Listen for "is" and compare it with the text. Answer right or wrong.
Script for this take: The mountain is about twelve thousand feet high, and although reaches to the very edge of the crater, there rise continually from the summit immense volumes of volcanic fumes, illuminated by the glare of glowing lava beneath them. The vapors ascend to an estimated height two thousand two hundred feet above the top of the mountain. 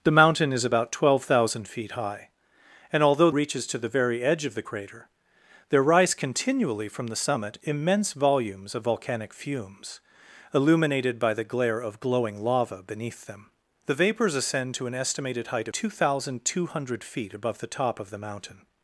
right